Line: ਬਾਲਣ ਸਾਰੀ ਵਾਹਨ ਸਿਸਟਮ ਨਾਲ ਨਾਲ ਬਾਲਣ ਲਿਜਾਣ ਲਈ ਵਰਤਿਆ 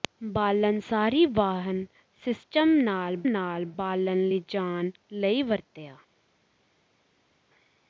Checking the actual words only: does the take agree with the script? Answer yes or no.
yes